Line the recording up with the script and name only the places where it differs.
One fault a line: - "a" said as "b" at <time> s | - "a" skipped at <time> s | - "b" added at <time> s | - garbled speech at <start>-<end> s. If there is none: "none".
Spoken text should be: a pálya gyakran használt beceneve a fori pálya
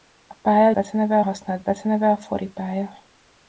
- "gyakran" said as "beceneve" at 0.7 s